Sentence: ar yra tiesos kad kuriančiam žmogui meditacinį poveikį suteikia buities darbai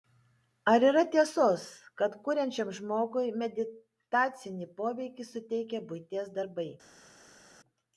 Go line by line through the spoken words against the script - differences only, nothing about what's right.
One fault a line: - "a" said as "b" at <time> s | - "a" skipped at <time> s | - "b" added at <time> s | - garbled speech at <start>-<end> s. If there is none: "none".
none